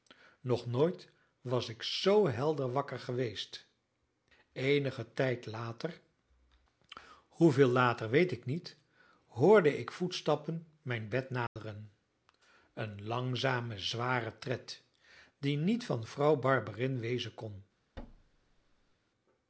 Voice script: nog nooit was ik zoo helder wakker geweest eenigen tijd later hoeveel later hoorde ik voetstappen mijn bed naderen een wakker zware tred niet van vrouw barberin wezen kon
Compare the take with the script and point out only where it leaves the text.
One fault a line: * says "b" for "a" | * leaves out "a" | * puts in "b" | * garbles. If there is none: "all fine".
* puts in "weet ik niet"
* says "langzame" for "wakker"
* puts in "die"